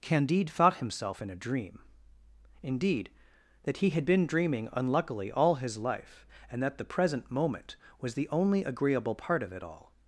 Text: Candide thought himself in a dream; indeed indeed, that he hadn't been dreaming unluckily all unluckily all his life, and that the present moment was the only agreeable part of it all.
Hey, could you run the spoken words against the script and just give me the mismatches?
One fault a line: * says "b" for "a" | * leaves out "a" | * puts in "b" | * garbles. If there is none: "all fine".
* leaves out "indeed"
* says "had" for "hadn't"
* leaves out "unluckily all"